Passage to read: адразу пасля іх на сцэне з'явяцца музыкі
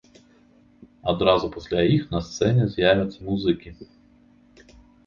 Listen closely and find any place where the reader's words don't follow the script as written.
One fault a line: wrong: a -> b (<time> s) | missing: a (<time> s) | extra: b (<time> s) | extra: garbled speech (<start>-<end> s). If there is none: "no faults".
no faults